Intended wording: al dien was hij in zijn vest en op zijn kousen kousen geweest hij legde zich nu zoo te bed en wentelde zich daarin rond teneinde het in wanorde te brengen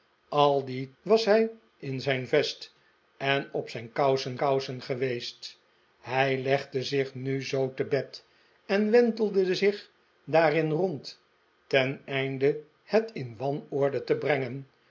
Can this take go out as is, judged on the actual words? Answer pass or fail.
pass